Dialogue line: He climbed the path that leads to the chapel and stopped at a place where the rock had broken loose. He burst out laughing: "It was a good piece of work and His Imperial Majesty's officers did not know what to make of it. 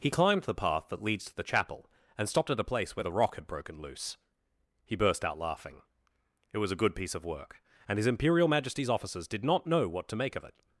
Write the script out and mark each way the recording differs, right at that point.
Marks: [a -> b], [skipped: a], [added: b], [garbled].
He climbed the path that leads to the chapel and stopped at a place where the rock had broken loose. He burst out laughing: "It was a good piece of work and His Imperial Majesty's officers did not know what to make of it.